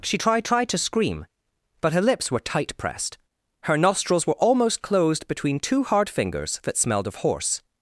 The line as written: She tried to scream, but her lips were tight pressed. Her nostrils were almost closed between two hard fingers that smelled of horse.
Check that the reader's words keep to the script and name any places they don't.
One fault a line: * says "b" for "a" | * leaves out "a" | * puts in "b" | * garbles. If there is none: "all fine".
* puts in "tried"